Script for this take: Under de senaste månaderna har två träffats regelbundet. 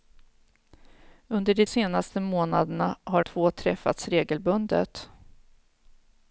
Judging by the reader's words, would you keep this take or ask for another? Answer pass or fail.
pass